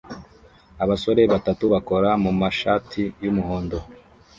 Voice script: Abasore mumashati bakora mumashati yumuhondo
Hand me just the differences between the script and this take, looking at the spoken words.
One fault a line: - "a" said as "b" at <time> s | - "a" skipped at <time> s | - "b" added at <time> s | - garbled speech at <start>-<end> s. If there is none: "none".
- "mumashati" said as "batatu" at 1.3 s